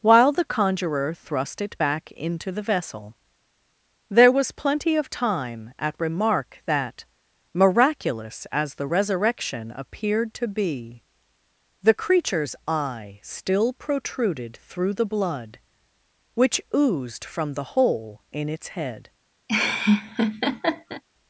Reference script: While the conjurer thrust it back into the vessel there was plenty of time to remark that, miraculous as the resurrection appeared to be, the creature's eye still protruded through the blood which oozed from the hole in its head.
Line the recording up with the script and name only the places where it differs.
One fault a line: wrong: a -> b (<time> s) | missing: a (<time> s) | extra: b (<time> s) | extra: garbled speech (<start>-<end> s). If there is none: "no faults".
wrong: to -> at (5.8 s)